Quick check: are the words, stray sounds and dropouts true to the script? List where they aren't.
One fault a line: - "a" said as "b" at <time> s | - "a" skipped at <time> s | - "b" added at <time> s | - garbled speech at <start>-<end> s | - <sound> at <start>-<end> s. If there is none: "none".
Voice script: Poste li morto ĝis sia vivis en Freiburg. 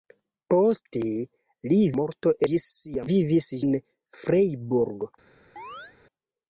- chirp at 5.6-6.0 s